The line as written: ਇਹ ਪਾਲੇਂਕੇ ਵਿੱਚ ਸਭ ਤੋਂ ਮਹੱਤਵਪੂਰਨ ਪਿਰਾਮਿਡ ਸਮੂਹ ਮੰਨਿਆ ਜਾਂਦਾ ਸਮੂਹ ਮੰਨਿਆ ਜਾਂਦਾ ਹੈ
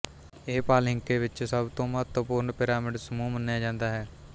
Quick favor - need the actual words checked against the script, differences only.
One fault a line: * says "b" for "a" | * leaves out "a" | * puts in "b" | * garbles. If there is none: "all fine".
* leaves out "ਸਮੂਹ ਮੰਨਿਆ ਜਾਂਦਾ"